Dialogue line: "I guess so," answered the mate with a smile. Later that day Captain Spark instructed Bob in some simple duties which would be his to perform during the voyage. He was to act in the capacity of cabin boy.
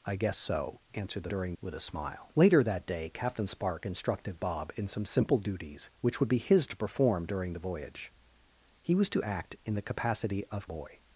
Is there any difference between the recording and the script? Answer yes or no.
yes